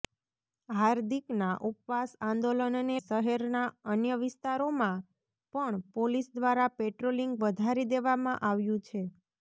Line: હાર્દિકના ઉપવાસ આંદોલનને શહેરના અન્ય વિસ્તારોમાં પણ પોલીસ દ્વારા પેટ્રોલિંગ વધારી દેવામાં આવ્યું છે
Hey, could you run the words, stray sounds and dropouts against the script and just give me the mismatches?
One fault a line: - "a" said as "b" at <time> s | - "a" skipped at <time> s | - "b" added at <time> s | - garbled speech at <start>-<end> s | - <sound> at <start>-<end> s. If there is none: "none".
none